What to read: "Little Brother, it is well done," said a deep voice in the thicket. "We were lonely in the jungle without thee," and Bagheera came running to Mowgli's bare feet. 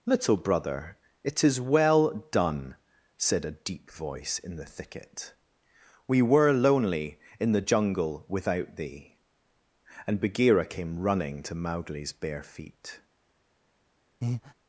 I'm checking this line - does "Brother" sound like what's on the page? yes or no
yes